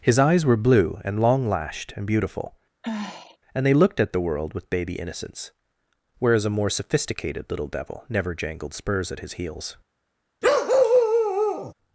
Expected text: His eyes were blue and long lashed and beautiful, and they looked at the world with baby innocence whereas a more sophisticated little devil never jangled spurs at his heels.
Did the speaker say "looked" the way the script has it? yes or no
yes